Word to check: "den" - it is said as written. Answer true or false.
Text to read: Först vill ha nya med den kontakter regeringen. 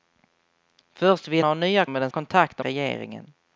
true